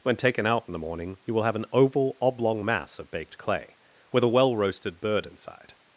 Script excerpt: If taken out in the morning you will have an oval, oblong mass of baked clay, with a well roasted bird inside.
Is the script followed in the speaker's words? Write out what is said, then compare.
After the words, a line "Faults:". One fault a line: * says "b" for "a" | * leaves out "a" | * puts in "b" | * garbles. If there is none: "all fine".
When taken out in the morning you will have an oval, oblong mass of baked clay, with a well roasted bird inside.
Faults:
* says "When" for "If"